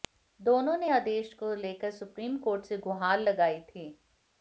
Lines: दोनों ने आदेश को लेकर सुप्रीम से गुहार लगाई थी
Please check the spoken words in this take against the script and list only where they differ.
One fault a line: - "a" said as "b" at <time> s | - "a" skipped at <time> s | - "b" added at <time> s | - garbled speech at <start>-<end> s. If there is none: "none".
- "कोर्ट" added at 2.4 s